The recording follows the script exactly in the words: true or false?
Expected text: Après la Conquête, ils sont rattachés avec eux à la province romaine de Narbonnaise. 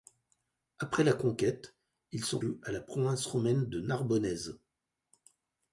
false